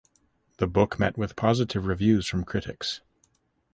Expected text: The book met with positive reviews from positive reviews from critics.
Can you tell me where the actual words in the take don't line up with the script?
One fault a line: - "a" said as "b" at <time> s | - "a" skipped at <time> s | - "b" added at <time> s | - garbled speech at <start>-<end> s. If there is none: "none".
- "positive reviews from" skipped at 2.4 s